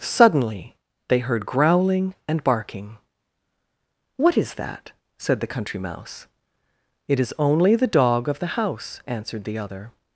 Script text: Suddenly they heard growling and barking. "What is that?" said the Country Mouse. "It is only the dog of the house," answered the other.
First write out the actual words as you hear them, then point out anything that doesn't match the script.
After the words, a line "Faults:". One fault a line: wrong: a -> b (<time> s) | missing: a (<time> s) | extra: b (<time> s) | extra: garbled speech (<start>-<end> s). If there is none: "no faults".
Suddenly they heard growling and barking. "What is that?" said the Country Mouse. "It is only the dog of the house," answered the other.
Faults:
no faults